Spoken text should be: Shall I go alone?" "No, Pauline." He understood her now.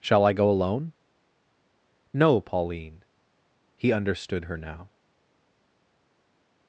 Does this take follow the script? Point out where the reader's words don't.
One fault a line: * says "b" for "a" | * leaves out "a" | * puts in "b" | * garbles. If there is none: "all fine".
all fine